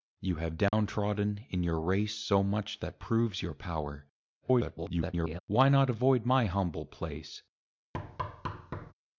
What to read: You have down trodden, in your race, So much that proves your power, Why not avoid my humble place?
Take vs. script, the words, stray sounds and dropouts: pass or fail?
fail